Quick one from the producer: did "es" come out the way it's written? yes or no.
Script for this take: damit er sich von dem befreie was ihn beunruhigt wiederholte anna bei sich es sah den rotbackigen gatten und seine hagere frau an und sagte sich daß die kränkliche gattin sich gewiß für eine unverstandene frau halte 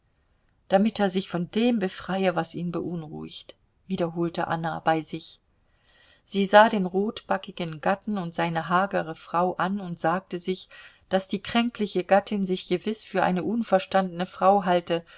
no